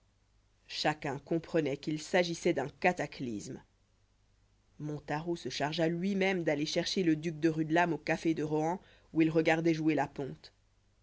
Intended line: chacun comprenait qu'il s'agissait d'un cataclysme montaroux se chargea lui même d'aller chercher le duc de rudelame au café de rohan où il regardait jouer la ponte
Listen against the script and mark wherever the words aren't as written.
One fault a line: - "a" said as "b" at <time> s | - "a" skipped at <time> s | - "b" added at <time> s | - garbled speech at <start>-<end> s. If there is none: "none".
none